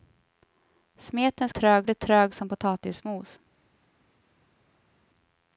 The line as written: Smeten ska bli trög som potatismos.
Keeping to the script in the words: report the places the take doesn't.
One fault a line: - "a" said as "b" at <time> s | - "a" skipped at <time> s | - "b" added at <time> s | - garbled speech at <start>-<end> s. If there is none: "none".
- "ska" said as "trög" at 1.5 s